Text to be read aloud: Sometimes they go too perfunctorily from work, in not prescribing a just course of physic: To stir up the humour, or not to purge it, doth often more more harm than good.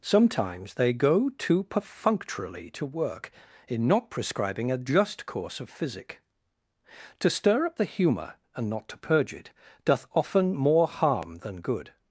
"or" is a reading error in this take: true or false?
true